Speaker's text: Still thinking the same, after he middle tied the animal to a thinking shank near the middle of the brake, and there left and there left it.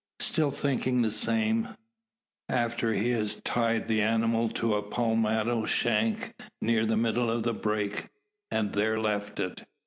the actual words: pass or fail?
fail